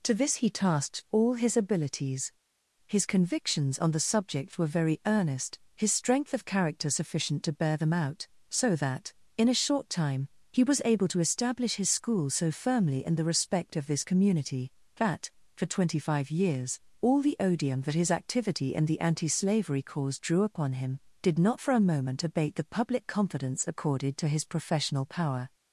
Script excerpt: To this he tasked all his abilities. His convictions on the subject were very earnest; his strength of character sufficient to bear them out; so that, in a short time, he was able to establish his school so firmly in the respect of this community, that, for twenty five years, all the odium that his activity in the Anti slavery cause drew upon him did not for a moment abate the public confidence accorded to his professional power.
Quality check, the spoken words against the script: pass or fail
pass